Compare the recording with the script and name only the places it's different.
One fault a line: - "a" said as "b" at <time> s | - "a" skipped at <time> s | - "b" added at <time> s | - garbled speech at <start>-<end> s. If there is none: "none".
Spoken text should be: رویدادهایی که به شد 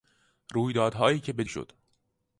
none